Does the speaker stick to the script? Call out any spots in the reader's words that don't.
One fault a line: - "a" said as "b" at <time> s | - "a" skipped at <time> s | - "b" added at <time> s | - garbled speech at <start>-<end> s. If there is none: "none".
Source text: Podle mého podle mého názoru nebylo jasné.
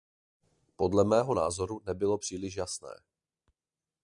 - "podle mého" skipped at 1.4 s
- "příliš" added at 2.2 s